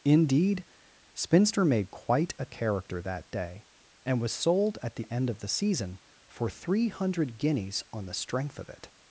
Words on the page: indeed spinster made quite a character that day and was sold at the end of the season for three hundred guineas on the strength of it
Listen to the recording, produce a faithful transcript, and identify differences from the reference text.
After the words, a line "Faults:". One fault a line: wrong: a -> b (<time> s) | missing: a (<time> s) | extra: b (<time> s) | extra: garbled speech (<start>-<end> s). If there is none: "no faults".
indeed spinster made quite a character that day and was sold at the end of the season for three hundred guineas on the strength of it
Faults:
no faults